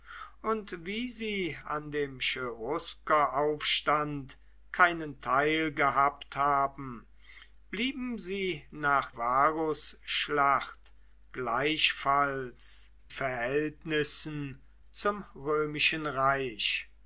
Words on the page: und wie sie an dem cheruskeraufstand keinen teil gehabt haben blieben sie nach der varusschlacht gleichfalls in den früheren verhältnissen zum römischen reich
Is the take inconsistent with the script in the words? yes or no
yes